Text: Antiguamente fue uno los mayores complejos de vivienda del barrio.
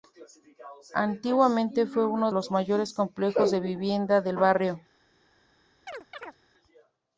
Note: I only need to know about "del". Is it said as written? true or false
true